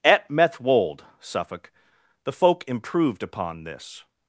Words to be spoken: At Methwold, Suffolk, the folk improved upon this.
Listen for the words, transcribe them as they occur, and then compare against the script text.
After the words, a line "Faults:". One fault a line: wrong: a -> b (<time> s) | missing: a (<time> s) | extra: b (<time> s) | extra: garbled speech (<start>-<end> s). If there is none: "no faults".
At Methwold, Suffolk, the folk improved upon this.
Faults:
no faults